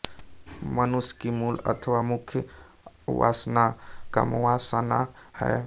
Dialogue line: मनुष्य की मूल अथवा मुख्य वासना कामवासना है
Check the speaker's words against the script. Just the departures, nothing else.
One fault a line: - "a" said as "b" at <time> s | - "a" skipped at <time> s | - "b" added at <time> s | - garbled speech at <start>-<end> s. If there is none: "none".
none